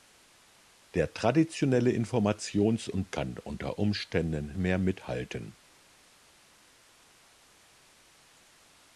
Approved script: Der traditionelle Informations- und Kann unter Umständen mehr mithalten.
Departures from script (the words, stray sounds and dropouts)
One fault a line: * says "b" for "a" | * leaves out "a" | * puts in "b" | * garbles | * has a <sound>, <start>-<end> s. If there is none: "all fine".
all fine